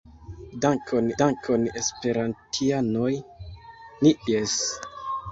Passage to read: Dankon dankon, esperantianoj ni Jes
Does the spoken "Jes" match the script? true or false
true